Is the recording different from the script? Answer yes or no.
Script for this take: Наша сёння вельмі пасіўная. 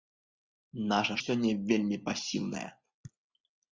no